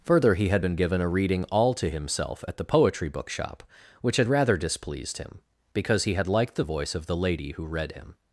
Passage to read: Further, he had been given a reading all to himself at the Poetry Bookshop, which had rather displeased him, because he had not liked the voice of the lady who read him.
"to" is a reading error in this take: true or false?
false